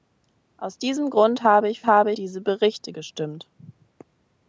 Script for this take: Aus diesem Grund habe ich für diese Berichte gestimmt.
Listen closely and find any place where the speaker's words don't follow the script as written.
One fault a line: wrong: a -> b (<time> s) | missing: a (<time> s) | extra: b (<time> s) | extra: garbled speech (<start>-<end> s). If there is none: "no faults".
wrong: für -> habe (1.9 s)